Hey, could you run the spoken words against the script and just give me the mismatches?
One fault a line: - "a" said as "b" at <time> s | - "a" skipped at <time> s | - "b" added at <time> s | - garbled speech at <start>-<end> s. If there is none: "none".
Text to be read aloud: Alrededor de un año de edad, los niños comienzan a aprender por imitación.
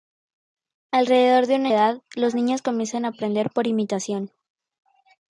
- "año de" skipped at 1.7 s